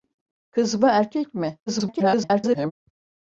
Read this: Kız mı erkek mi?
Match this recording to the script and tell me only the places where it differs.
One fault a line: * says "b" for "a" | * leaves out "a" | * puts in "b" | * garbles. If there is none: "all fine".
* garbles